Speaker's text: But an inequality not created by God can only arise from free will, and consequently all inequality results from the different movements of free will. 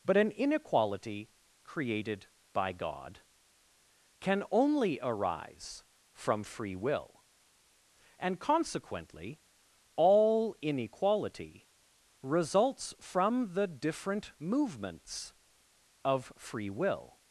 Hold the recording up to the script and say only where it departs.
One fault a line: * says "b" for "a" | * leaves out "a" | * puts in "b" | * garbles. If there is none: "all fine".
* leaves out "not"